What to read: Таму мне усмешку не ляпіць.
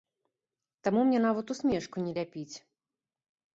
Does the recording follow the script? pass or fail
fail